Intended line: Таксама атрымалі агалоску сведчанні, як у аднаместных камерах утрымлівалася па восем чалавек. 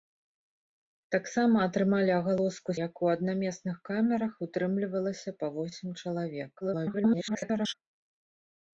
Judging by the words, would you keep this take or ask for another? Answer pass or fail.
fail